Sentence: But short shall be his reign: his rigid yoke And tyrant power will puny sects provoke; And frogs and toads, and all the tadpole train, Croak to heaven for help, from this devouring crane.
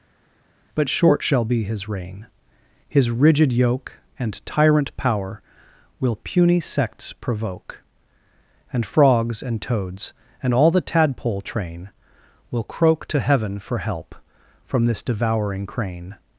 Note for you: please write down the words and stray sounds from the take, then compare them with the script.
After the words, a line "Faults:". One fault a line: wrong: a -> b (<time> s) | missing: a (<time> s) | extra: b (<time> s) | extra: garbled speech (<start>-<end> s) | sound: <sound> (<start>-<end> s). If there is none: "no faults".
But short shall be his reign: his rigid yoke And tyrant power will puny sects provoke; And frogs and toads, and all the tadpole train, Will croak to heaven for help, from this devouring crane.
Faults:
extra: Will (12.5 s)